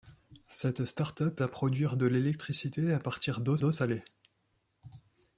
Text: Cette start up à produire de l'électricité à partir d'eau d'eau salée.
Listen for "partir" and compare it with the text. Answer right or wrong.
right